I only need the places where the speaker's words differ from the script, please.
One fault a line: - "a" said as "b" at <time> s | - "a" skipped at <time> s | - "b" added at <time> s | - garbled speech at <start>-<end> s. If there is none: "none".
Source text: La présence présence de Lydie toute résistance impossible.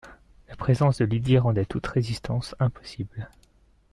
- "présence" skipped at 1.0 s
- "rendait" added at 1.4 s